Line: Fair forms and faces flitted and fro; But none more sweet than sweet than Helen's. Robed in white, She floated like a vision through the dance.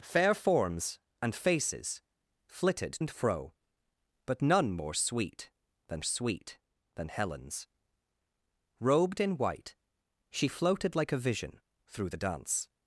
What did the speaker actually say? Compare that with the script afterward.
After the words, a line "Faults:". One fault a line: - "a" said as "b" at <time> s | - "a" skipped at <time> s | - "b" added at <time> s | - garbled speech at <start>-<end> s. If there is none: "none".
Fair forms and faces flitted and fro; But none more sweet than sweet than Helen's. Robed in white, She floated like a vision through the dance.
Faults:
none